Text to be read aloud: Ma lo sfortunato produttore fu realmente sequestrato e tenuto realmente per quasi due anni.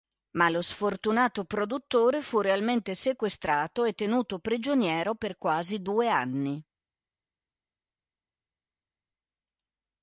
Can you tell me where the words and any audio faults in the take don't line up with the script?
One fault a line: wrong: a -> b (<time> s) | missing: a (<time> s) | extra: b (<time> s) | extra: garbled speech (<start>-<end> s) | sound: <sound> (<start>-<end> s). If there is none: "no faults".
wrong: realmente -> prigioniero (4.4 s)